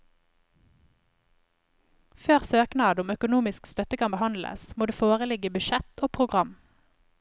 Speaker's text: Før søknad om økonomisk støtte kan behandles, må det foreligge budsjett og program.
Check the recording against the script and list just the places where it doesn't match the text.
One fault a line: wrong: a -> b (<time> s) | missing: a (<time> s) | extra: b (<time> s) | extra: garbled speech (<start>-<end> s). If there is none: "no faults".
no faults